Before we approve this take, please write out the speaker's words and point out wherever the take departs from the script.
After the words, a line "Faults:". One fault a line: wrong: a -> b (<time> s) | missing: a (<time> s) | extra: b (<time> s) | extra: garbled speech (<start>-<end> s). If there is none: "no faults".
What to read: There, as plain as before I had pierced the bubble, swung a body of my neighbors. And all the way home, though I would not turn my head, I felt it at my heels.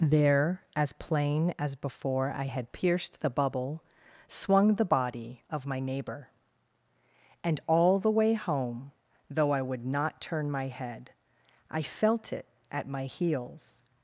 There, as plain as before I had pierced the bubble, swung the body of my neighbor. And all the way home, though I would not turn my head, I felt it at my heels.
Faults:
wrong: a -> the (4.8 s)
wrong: neighbors -> neighbor (5.8 s)